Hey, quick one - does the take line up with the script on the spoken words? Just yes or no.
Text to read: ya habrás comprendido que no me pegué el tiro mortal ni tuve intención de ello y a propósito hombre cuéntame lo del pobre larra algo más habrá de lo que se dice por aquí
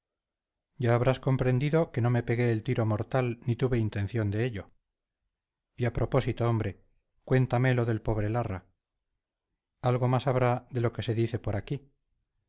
yes